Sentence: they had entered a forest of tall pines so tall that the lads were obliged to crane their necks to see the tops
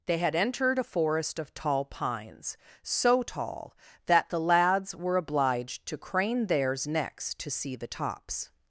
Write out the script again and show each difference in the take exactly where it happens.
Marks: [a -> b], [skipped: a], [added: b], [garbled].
they had entered a forest of tall pines so tall that the lads were obliged to crane [their -> theirs] necks to see the tops